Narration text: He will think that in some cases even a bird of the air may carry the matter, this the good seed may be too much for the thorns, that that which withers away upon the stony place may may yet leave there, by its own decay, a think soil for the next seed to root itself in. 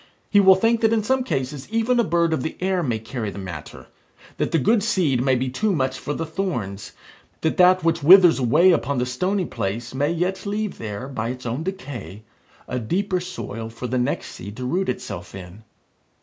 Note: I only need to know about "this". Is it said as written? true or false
false